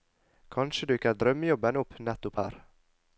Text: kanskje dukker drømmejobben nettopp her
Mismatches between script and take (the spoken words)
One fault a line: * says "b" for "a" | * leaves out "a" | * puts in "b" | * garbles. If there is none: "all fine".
* puts in "opp"